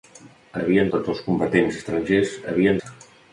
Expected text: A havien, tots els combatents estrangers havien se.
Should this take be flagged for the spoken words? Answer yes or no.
no